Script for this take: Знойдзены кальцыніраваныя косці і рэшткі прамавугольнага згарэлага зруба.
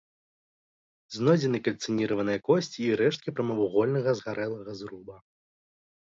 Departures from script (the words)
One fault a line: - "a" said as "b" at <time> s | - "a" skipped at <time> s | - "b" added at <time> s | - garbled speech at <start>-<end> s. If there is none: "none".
none